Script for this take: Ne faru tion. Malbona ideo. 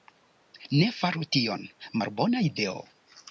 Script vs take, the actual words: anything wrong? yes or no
no